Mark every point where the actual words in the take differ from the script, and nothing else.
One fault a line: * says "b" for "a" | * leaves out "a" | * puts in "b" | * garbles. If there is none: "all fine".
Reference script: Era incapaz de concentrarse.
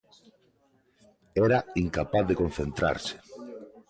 all fine